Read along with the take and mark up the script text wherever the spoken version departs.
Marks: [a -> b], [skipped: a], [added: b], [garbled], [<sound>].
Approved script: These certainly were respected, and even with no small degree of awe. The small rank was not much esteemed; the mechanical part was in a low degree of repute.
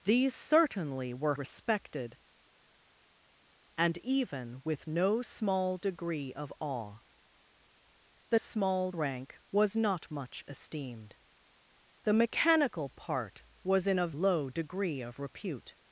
These certainly were respected, and even with no small degree of awe. The small rank was not much esteemed; the mechanical part was in a low degree of repute.